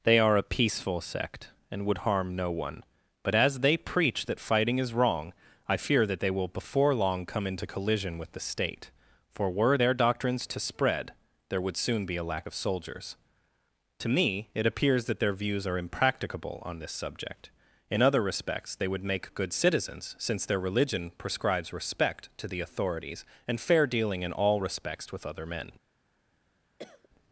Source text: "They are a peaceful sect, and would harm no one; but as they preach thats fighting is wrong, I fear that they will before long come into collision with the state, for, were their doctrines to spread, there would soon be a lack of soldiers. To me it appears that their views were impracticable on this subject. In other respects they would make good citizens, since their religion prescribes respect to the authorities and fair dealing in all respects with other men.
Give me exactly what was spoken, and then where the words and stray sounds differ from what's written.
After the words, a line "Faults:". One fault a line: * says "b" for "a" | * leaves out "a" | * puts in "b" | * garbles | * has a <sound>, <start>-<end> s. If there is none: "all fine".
"They are a peaceful sect, and would harm no one; but as they preach that fighting is wrong, I fear that they will before long come into collision with the state, for, were their doctrines to spread, there would soon be a lack of soldiers. To me it appears that their views are impracticable on this subject. In other respects they would make good citizens, since their religion prescribes respect to the authorities and fair dealing in all respects with other men.
Faults:
* says "that" for "thats"
* says "are" for "were"
* has a cough, 26.8-27.1 s